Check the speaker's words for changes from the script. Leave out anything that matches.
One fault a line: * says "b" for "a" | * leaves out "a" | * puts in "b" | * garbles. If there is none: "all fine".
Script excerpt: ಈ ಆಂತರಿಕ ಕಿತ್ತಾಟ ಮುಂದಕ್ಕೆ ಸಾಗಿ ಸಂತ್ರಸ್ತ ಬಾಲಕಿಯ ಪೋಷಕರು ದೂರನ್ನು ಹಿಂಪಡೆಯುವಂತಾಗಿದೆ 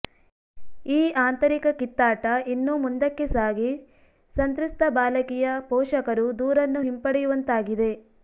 * puts in "ಇನ್ನೂ"